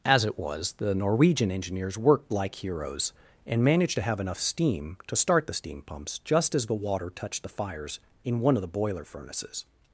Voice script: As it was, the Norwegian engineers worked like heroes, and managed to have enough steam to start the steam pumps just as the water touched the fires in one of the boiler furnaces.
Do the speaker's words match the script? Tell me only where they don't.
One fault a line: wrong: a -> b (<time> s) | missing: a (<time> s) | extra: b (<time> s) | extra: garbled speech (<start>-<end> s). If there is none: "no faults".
no faults